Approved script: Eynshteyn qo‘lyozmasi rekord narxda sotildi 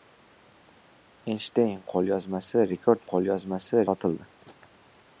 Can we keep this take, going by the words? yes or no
no